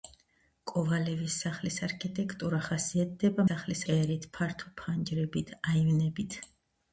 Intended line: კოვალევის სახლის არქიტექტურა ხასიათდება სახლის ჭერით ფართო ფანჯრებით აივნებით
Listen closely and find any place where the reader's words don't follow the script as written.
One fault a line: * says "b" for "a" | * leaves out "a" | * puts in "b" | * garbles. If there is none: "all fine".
all fine